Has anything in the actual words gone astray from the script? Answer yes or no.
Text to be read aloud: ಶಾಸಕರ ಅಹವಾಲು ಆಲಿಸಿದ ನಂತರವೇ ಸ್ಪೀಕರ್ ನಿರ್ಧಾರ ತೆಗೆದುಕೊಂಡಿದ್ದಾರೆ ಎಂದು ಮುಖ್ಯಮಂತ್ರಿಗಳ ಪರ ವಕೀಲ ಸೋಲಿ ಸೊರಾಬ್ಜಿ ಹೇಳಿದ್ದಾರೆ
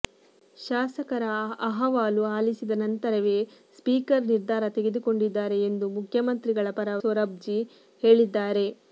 yes